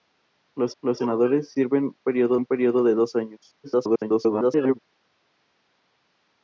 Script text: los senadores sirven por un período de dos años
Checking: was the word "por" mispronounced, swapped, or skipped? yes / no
yes